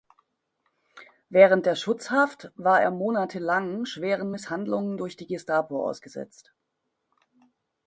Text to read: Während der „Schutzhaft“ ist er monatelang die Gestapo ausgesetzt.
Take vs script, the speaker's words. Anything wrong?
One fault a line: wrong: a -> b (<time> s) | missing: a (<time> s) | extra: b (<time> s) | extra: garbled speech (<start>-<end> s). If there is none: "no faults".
wrong: ist -> war (2.5 s)
extra: schweren Misshandlungen durch (3.8 s)